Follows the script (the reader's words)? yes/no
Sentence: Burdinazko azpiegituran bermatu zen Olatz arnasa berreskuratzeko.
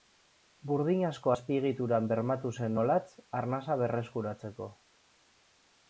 yes